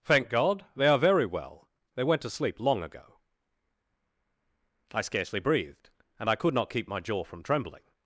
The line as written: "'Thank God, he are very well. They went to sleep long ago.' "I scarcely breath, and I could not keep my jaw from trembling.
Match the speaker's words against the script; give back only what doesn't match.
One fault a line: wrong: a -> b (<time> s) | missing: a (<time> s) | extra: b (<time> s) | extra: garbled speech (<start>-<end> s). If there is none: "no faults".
wrong: he -> they (0.8 s)
wrong: breath -> breathed (5.4 s)